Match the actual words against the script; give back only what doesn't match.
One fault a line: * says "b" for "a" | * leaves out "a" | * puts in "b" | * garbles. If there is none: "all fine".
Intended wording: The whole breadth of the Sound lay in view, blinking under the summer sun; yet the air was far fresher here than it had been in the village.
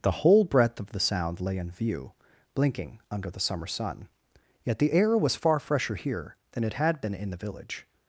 all fine